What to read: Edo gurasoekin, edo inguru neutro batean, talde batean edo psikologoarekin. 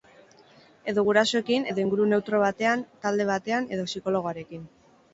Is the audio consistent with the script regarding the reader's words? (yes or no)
yes